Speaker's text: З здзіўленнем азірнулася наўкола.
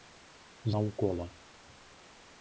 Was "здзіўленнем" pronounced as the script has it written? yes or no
no